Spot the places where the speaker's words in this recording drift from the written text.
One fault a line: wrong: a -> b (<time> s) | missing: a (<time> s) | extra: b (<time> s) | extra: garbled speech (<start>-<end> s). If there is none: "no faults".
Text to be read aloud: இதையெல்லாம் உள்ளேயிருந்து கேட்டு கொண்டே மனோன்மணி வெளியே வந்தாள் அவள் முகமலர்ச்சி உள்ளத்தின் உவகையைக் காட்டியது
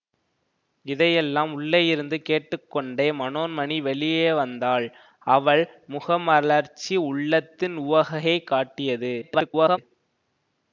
extra: garbled speech (9.2-9.8 s)